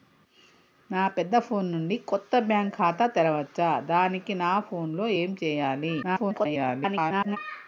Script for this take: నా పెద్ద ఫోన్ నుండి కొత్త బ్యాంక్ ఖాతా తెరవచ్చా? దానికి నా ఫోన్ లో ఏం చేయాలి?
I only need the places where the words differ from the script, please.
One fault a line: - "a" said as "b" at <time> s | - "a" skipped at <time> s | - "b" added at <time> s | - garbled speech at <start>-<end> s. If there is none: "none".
- garbled speech at 6.0-7.4 s